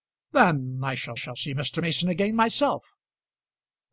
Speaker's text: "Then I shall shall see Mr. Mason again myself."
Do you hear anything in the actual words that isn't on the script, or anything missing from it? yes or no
no